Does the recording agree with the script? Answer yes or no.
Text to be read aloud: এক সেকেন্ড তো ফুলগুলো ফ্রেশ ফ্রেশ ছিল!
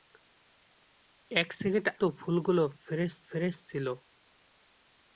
yes